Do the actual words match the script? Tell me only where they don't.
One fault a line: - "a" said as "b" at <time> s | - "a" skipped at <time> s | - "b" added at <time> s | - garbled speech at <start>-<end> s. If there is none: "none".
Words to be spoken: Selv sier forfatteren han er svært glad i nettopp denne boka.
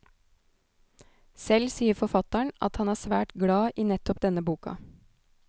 - "at" added at 2.7 s